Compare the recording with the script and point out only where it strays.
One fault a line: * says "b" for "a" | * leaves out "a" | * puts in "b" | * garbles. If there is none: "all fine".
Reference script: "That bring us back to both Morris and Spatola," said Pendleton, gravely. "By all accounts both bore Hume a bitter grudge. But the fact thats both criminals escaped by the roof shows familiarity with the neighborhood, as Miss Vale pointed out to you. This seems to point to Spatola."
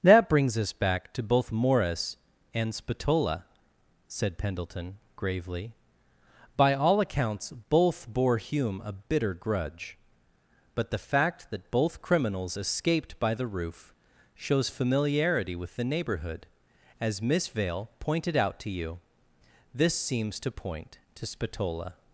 * says "brings" for "bring"
* says "that" for "thats"